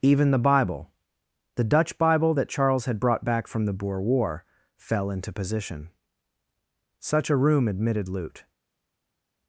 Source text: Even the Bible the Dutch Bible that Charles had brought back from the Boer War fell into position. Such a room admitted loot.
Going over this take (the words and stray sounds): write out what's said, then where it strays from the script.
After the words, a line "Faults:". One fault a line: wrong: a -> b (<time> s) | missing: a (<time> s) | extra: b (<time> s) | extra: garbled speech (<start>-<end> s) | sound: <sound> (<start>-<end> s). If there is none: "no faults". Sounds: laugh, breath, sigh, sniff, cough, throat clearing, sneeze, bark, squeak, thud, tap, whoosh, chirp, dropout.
Even the Bible the Dutch Bible that Charles had brought back from the Boer War fell into position. Such a room admitted loot.
Faults:
no faults